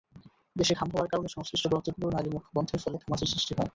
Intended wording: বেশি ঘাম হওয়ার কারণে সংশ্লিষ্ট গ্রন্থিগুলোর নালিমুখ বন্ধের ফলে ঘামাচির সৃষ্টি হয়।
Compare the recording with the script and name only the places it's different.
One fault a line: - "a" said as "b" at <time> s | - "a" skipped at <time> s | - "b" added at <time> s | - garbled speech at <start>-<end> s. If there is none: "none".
none